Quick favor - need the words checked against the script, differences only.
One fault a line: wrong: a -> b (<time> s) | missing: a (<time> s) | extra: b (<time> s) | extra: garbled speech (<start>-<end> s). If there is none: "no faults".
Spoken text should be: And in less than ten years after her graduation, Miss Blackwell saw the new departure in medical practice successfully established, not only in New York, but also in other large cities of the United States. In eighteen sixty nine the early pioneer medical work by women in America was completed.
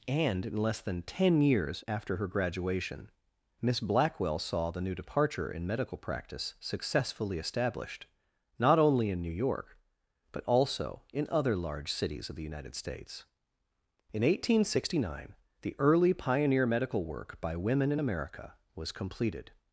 no faults